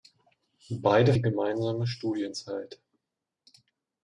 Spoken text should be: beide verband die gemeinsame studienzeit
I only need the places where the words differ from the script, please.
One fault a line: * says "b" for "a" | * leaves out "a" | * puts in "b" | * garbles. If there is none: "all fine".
* leaves out "verband"